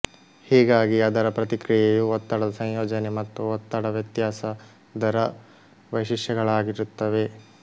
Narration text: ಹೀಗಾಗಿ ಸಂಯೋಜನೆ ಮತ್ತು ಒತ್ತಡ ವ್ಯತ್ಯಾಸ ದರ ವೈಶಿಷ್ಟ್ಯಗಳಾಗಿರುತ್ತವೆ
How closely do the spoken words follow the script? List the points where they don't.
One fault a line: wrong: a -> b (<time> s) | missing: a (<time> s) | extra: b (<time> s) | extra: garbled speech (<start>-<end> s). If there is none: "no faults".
extra: ಅದರ ಪ್ರತಿಕ್ರಿಯೆಯು ಒತ್ತಡದ (1.1 s)